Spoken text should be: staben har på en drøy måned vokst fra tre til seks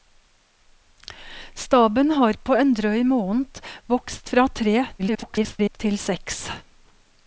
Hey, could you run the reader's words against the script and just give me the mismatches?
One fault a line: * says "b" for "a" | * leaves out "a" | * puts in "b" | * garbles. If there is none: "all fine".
* garbles